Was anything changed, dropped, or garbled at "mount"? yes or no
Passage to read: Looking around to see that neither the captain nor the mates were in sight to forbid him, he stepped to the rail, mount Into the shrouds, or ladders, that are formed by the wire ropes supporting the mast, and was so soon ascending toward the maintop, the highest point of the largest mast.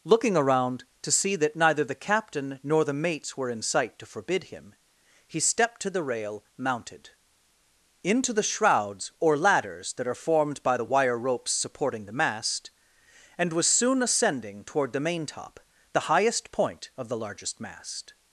yes